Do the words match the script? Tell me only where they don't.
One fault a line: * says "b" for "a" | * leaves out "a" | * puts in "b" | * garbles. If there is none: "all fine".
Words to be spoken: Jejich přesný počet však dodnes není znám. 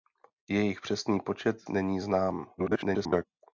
* leaves out "však dodnes"
* garbles